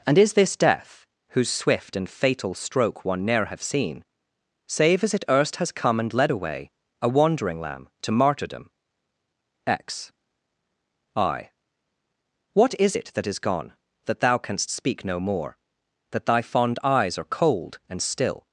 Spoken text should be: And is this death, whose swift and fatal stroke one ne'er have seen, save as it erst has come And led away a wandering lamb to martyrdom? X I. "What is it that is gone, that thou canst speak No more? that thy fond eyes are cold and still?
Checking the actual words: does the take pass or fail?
pass